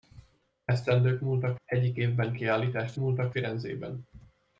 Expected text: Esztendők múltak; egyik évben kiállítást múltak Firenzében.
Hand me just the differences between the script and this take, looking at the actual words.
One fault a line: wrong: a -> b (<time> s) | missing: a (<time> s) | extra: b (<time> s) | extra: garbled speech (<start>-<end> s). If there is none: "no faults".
no faults